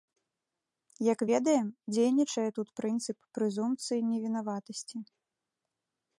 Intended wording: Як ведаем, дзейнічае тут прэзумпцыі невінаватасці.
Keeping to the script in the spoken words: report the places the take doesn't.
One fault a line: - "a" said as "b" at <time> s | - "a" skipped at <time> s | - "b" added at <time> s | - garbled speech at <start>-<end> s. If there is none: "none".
- "прынцып" added at 2.8 s